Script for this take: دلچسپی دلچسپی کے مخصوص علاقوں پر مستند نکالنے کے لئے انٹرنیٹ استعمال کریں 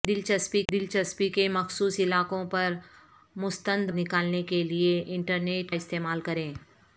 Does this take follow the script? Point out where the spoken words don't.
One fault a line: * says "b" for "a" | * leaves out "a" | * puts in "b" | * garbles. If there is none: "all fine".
all fine